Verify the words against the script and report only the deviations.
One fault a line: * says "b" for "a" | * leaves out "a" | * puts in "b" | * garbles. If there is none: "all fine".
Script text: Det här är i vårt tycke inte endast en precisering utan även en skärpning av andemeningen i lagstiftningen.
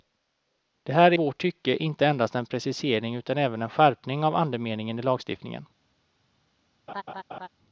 * leaves out "i"